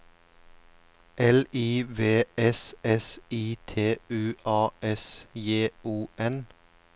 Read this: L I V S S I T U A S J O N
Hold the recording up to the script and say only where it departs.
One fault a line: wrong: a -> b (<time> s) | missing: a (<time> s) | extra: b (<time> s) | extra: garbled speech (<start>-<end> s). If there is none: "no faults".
no faults